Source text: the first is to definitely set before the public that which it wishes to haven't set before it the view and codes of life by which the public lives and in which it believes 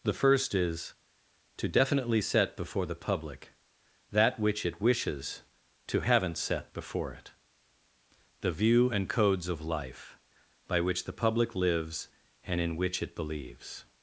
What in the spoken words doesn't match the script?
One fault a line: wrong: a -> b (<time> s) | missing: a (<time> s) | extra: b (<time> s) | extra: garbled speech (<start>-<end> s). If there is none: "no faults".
no faults